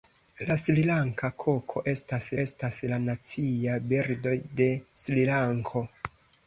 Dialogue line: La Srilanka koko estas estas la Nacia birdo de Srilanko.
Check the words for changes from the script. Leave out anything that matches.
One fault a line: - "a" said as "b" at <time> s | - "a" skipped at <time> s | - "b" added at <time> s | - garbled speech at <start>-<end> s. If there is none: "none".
none